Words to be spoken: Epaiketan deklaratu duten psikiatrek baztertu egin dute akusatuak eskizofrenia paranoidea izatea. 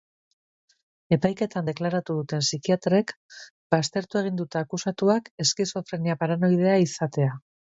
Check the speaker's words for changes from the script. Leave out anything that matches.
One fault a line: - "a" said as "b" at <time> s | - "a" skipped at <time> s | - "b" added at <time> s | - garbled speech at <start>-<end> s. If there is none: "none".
none